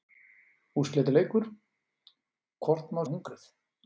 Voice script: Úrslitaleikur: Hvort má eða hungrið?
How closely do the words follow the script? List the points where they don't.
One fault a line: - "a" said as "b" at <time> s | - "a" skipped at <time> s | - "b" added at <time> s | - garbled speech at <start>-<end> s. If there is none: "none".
none